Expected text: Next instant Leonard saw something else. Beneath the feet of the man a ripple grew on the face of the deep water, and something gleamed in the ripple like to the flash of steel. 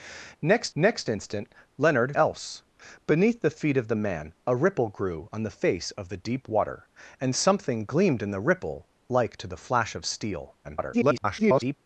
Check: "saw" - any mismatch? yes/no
yes